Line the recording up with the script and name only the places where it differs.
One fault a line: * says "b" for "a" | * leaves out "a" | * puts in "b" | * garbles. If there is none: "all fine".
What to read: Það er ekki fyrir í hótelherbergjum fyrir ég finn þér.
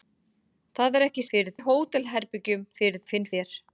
all fine